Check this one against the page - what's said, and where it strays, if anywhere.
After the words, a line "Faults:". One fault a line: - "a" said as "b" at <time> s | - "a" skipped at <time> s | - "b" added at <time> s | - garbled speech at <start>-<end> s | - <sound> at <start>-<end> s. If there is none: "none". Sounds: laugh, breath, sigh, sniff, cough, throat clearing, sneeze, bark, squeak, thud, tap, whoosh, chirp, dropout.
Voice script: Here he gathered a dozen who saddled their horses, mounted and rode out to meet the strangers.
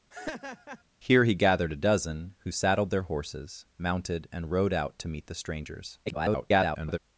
Here he gathered a dozen who saddled their horses, mounted and rode out to meet the strangers. [garbled]
Faults:
- laugh at 0.1-0.8 s
- garbled speech at 6.1-7.0 s